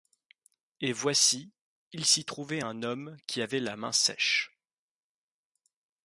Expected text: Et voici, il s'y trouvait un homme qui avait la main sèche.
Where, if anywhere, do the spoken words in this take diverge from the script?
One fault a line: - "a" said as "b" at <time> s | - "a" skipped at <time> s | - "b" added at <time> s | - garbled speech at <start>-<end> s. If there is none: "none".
none